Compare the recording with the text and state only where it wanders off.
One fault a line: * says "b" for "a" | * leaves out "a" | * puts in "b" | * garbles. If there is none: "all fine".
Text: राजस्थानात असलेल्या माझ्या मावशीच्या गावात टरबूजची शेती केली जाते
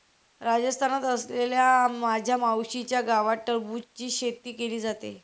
all fine